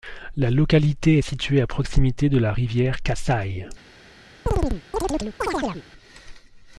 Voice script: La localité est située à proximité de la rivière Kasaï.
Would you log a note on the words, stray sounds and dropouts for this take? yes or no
yes